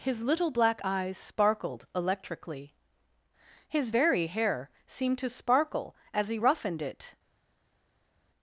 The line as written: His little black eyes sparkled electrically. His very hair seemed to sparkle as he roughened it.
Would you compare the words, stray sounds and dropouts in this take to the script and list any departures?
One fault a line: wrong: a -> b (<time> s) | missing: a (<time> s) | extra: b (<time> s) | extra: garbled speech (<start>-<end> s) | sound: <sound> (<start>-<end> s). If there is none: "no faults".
no faults